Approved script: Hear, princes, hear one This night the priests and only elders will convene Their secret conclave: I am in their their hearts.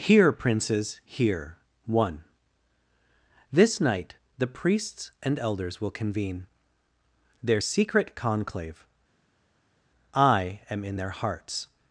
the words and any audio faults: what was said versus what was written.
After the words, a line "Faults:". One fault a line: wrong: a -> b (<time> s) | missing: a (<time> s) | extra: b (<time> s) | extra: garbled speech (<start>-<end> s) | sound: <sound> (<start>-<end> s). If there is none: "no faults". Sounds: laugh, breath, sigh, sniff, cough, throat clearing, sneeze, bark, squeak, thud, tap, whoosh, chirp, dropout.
Hear, princes, hear one This night the priests and elders will convene Their secret conclave: I am in their hearts.
Faults:
missing: only (5.4 s)
missing: their (11.1 s)